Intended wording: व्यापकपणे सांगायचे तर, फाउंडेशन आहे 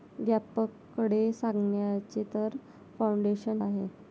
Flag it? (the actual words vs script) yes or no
no